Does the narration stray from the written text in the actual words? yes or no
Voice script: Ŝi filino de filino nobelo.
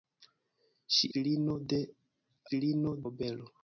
no